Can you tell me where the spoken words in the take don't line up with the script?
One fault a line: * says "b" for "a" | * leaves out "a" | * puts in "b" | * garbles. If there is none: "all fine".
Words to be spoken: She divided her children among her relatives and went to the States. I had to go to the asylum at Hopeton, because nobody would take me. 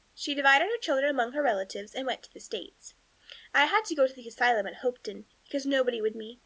* leaves out "take"